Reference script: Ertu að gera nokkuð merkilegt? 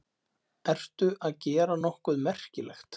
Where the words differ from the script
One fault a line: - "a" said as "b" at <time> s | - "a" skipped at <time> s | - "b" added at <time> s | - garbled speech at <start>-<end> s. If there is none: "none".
none